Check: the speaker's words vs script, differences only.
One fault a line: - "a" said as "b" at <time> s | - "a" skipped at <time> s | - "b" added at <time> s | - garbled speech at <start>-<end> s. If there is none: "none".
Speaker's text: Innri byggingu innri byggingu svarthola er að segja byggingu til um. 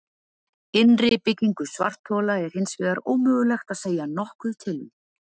- "innri byggingu svarthola er" said as "svarthola er hins vegar ómögulegt" at 1.7 s
- "byggingu" said as "nokkuð" at 4.2 s